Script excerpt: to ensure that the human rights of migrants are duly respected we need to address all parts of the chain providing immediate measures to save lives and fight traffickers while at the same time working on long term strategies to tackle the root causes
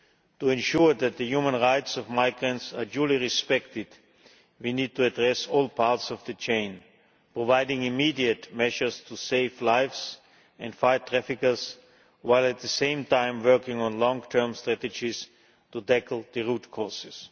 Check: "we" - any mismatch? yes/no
no